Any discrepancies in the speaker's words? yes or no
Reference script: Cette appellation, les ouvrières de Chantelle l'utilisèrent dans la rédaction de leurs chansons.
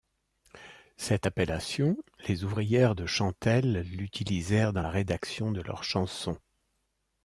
no